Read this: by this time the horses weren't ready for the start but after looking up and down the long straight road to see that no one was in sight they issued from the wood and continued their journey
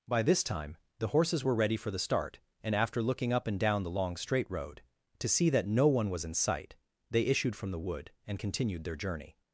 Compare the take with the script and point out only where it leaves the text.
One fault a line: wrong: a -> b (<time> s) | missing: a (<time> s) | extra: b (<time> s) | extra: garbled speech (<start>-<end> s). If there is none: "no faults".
wrong: weren't -> were (1.4 s)
wrong: but -> and (2.6 s)